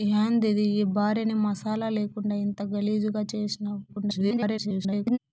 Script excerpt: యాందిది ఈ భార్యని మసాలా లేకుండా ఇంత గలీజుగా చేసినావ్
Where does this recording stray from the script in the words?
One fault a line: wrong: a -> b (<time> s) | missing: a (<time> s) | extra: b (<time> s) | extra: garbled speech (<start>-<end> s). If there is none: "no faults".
extra: garbled speech (3.9-5.2 s)